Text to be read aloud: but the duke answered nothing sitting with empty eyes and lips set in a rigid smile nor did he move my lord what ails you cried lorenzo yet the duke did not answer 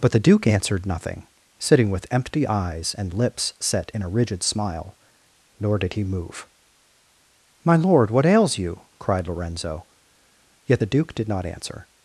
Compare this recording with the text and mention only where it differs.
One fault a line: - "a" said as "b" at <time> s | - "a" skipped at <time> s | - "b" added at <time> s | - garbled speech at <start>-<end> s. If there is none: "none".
none